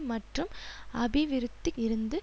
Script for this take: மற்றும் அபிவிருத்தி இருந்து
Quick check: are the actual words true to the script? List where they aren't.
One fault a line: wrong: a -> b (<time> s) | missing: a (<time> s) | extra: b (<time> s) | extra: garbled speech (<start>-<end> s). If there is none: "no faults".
no faults